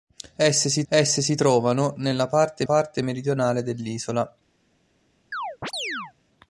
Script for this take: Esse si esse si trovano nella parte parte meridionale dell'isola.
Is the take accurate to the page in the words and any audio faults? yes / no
no